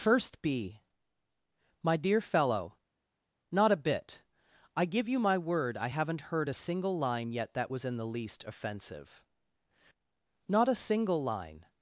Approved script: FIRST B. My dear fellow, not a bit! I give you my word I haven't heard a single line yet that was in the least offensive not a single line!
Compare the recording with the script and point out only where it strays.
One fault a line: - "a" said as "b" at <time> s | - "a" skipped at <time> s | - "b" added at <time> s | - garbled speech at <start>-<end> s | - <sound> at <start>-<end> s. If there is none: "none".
none